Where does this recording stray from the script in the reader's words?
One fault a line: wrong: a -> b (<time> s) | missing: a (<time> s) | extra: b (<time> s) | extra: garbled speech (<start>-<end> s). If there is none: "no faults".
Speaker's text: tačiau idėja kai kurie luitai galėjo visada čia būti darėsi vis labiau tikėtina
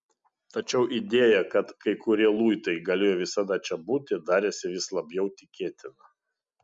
extra: kad (1.5 s)